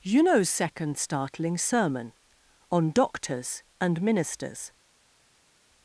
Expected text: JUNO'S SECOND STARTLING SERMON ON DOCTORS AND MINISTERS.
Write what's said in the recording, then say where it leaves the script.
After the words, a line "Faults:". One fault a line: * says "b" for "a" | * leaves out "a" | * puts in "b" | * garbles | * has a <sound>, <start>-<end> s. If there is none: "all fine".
JUNO'S SECOND STARTLING SERMON ON DOCTORS AND MINISTERS.
Faults:
all fine